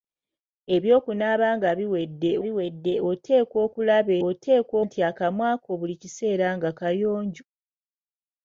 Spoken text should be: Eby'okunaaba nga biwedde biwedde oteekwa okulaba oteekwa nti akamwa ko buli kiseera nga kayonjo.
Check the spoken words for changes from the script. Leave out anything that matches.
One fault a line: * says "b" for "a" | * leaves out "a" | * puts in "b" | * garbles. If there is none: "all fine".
all fine